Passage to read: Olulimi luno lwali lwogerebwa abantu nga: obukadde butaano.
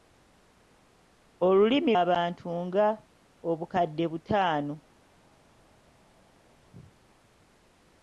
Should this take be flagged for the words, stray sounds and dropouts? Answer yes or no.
yes